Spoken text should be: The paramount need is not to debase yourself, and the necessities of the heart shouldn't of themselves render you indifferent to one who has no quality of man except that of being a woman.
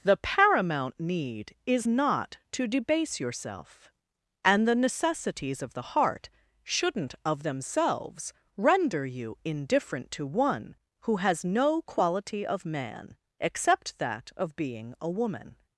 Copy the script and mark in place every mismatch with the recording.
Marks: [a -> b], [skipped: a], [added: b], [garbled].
The paramount need is not to debase yourself, and the necessities of the heart shouldn't of themselves render you indifferent to one who has no quality of man except that of being a woman.